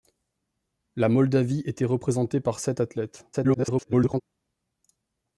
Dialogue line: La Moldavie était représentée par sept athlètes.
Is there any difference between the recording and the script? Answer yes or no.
yes